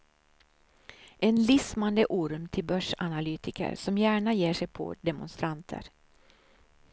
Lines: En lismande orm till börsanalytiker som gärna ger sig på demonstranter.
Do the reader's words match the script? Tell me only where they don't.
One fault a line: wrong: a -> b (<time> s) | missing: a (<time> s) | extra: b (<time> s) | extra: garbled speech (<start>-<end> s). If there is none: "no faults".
no faults